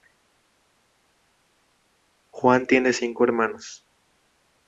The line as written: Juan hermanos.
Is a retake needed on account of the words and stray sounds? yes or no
yes